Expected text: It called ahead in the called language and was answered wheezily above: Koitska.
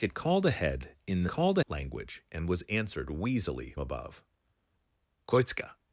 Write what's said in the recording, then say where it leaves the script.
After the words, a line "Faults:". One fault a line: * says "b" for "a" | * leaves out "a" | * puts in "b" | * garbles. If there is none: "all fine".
It called ahead in the called language and was answered wheezily above: Koitska.
Faults:
all fine